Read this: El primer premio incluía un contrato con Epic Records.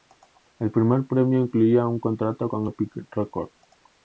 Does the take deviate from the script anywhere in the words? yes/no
no